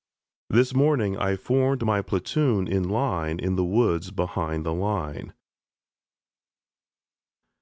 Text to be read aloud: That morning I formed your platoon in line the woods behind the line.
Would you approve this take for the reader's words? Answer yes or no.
no